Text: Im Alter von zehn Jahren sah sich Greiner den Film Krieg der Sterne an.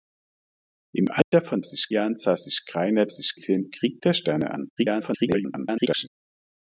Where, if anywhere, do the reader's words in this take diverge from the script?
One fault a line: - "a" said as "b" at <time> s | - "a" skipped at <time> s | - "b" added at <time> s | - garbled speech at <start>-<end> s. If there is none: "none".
- "zehn" said as "sich" at 1.6 s
- "den" said as "sich" at 3.1 s
- garbled speech at 4.8-6.1 s